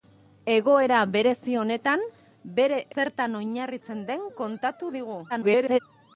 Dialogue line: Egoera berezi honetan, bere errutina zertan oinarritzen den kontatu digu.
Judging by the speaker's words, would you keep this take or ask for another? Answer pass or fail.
fail